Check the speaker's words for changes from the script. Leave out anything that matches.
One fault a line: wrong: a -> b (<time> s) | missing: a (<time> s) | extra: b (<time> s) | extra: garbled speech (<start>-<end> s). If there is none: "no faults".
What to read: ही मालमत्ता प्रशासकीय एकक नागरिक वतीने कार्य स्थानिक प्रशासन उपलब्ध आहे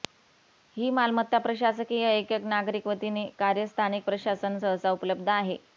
extra: सहसा (4.6 s)